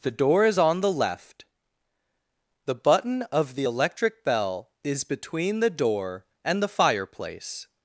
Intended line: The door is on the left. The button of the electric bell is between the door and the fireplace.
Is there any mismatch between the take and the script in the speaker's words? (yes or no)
no